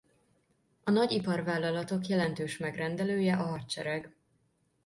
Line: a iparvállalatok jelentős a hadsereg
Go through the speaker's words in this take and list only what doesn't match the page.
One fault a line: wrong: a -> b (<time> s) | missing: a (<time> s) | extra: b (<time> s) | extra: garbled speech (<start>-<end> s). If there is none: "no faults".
extra: nagy (0.9 s)
extra: megrendelője (2.6 s)